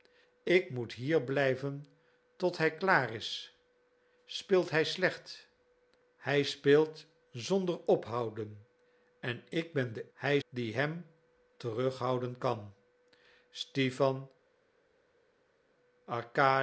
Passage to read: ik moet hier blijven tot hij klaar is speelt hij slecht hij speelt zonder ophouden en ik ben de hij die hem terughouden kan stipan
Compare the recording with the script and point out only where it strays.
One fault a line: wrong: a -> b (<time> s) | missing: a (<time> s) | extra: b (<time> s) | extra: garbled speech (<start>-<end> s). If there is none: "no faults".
no faults